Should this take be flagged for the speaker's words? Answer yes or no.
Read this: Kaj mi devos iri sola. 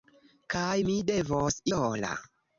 yes